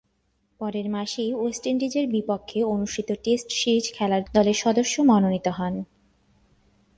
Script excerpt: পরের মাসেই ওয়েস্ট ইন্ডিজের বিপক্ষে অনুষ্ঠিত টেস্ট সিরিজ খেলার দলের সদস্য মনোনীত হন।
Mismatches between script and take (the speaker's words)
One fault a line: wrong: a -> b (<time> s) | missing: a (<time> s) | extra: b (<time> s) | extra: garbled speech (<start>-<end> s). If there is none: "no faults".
no faults